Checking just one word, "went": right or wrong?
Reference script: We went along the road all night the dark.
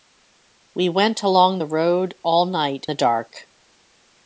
right